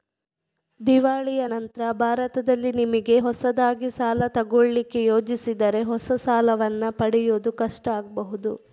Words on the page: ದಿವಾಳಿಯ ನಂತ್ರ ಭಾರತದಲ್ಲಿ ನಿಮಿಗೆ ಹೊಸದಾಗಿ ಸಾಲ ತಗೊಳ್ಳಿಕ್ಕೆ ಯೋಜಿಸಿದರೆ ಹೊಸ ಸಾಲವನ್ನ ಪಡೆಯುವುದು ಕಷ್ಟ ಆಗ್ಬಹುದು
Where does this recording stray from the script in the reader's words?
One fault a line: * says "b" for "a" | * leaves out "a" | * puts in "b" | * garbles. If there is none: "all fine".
all fine